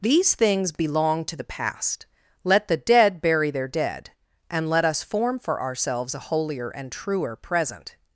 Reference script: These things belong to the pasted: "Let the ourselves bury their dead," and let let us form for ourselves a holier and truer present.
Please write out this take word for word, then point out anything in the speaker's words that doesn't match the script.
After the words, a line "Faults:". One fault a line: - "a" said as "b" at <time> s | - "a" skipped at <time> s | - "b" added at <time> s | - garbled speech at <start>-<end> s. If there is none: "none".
These things belong to the past: "Let the dead bury their dead," and let us form for ourselves a holier and truer present.
Faults:
- "pasted" said as "past" at 1.4 s
- "ourselves" said as "dead" at 2.8 s
- "let" skipped at 4.8 s